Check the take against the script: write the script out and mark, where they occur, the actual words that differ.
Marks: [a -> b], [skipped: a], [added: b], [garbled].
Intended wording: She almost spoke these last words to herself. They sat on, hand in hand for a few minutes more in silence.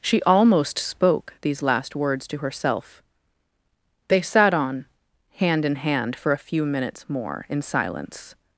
She almost spoke these last words to herself. They sat on, hand in hand for a few minutes more in silence.